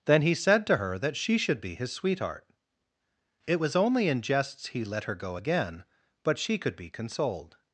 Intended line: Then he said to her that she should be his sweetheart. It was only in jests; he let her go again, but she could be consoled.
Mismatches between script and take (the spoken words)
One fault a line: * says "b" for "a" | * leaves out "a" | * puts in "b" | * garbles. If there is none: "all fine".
all fine